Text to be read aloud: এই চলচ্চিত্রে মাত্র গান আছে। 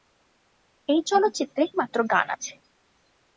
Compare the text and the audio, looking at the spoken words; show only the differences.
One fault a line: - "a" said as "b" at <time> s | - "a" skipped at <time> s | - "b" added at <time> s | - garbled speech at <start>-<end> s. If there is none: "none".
none